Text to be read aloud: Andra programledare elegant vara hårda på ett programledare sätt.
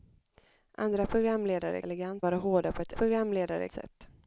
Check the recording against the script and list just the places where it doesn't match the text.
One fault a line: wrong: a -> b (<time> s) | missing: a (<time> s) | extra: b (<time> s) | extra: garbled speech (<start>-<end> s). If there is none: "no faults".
no faults